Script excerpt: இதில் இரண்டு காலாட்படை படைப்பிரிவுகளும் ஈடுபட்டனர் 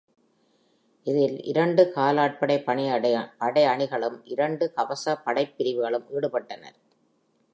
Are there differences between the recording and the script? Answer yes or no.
yes